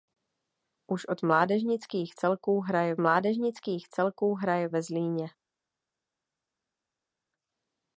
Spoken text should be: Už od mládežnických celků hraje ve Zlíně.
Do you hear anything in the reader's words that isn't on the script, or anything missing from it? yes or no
yes